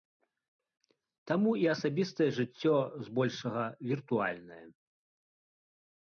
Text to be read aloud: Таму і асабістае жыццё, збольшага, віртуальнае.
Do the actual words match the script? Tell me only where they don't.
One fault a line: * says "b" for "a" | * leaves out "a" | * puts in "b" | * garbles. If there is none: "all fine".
all fine